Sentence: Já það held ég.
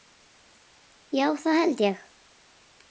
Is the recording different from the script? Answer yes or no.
no